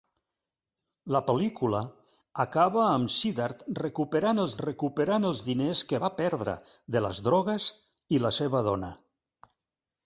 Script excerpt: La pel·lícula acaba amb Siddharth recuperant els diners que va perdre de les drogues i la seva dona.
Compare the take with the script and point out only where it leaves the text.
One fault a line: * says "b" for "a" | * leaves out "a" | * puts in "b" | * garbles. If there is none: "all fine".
* puts in "recuperant els"